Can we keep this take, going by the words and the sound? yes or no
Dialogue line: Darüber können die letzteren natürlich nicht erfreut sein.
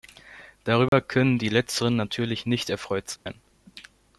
no